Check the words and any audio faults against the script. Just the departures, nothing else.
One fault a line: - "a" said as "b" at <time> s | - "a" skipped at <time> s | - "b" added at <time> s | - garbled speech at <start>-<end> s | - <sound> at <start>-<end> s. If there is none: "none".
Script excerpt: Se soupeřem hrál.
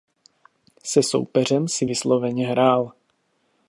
- "si vysloveně" added at 1.7 s